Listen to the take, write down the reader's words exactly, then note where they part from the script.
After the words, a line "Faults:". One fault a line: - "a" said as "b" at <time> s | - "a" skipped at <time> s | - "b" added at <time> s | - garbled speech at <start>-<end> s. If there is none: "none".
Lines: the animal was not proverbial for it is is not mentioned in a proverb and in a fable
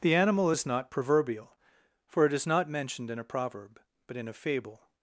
the animal is not proverbial for it is not mentioned in a proverb but in a fable
Faults:
- "was" said as "is" at 0.5 s
- "is" skipped at 2.5 s
- "and" said as "but" at 4.1 s